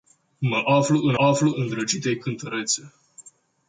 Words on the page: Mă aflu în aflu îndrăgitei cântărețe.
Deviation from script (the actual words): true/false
false